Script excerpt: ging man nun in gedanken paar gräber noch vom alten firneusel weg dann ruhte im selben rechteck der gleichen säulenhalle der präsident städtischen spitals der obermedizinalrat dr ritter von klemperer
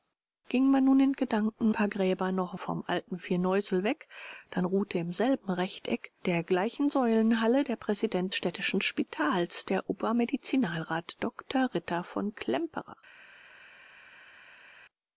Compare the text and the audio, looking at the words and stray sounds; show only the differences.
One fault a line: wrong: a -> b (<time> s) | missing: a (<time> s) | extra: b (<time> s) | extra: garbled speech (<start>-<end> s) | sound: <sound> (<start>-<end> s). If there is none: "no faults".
no faults